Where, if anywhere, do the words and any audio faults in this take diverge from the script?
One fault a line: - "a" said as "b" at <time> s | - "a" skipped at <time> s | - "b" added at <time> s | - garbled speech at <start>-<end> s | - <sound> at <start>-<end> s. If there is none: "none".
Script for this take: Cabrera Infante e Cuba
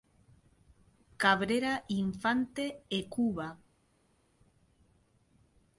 none